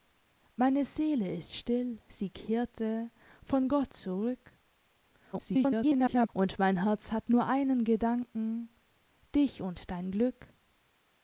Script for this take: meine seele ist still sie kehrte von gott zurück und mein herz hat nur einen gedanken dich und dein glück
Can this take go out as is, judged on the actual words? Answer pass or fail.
fail